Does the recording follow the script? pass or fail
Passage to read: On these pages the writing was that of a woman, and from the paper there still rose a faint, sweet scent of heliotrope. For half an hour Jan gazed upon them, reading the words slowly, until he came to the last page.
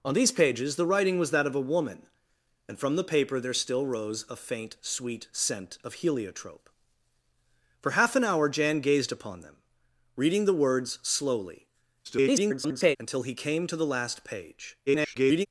fail